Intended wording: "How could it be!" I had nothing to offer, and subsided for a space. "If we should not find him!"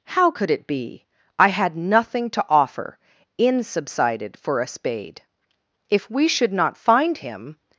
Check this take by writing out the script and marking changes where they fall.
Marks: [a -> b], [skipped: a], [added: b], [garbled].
"How could it be!" I had nothing to offer, [and -> in] subsided for a [space. -> spade] "If we should not find him!"